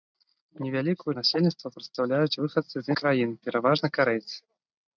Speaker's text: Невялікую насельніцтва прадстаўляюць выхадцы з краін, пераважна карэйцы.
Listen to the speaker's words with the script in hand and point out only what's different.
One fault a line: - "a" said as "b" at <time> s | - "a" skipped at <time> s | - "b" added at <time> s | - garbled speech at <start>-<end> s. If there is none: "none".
none